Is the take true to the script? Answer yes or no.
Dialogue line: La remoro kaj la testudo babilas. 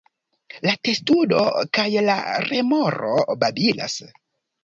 no